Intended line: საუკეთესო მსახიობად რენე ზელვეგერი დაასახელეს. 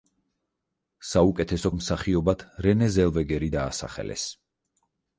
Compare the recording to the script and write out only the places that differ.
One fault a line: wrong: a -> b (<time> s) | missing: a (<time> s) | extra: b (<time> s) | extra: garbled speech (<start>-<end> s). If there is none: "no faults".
no faults